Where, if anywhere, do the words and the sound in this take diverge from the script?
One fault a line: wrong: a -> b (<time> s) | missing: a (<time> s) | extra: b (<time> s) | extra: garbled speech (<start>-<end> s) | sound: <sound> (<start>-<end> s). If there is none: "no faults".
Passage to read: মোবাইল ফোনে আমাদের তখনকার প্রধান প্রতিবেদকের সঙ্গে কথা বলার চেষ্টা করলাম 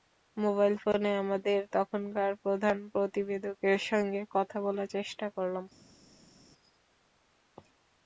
no faults